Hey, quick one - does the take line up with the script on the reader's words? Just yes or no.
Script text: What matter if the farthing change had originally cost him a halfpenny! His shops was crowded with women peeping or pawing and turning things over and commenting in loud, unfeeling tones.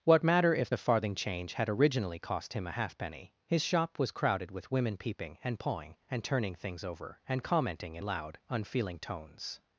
no